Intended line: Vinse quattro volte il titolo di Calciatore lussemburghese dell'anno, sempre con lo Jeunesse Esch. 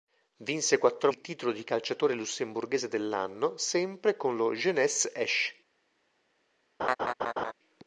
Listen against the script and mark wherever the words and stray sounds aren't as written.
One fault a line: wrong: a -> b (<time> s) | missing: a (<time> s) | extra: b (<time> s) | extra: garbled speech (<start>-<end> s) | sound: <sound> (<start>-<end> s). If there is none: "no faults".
missing: volte (1.1 s)
sound: laugh (6.8-7.5 s)